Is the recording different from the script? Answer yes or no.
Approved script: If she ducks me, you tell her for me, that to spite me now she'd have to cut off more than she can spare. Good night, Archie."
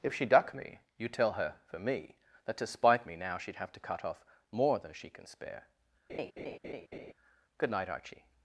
yes